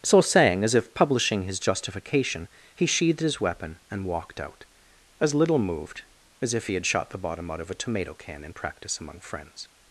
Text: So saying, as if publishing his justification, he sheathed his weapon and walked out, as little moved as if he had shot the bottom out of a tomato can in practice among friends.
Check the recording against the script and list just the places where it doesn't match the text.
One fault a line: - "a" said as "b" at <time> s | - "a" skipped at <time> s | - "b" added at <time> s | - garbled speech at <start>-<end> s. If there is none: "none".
none